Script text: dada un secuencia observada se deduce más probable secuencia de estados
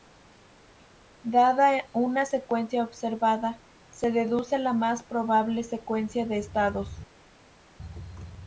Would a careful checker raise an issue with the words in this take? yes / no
yes